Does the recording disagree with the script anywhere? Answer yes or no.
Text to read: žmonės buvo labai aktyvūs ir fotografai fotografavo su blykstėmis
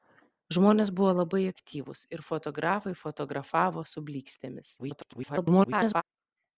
yes